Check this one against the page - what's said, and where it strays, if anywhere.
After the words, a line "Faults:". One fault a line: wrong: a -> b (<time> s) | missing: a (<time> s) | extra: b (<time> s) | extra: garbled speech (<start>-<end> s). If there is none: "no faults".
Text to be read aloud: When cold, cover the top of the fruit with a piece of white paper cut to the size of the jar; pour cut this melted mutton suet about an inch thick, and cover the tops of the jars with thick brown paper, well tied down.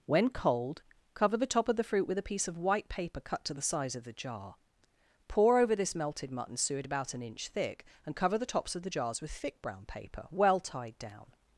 When cold, cover the top of the fruit with a piece of white paper cut to the size of the jar; pour over this melted mutton suet about an inch thick, and cover the tops of the jars with thick brown paper, well tied down.
Faults:
wrong: cut -> over (5.6 s)